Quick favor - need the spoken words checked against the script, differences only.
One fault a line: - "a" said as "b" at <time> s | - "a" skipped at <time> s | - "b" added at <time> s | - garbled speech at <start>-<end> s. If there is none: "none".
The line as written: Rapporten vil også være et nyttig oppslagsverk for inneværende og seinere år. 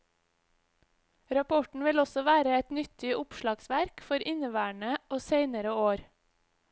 none